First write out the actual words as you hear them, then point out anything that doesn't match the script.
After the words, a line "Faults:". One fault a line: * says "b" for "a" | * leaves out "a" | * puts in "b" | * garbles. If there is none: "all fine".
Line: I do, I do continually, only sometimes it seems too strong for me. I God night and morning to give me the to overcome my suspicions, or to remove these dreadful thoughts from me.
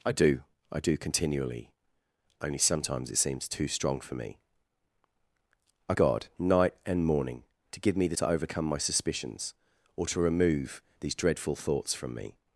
I do, I do continually, only sometimes it seems too strong for me. I God night and morning to give me the to overcome my suspicions, or to remove these dreadful thoughts from me.
Faults:
all fine